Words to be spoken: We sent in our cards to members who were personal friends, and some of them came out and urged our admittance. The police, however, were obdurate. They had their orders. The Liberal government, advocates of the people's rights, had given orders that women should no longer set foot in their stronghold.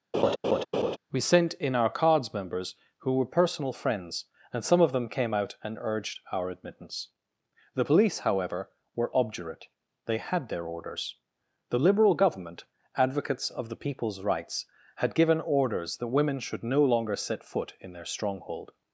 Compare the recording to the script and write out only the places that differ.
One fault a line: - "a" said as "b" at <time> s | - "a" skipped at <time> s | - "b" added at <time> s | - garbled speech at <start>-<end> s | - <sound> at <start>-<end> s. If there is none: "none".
- laugh at 0.1-1.0 s
- "to" skipped at 2.3 s